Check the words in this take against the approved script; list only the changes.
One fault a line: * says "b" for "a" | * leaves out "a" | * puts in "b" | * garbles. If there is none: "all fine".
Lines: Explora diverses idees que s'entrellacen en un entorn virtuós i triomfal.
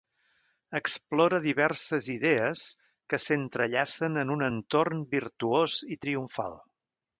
all fine